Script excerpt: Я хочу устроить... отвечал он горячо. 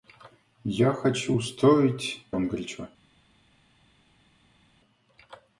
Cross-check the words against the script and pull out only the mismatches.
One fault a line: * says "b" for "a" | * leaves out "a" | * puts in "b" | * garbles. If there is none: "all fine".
* leaves out "отвечал"